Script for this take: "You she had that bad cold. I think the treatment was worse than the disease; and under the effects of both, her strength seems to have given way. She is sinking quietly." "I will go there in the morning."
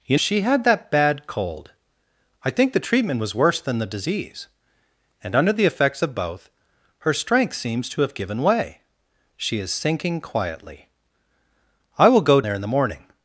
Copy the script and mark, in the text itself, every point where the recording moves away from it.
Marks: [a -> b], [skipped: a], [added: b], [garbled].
"You she had that bad cold. I think the treatment was worse than the disease; and under the effects of both, her strength seems to have given way. She is sinking quietly." "I will go there in the morning."